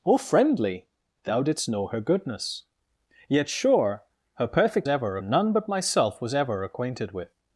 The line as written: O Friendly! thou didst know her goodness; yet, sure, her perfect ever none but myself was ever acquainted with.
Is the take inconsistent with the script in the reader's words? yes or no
no